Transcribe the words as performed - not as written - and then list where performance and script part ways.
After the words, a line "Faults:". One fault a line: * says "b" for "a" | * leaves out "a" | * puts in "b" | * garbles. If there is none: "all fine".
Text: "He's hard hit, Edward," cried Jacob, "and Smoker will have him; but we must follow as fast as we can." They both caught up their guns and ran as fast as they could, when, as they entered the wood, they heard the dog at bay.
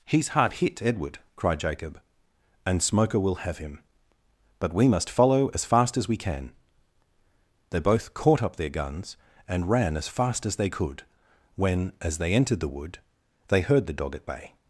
"He's hard hit, Edward," cried Jacob, "and Smoker will have him; but we must follow as fast as we can." They both caught up their guns and ran as fast as they could, when, as they entered the wood, they heard the dog at bay.
Faults:
all fine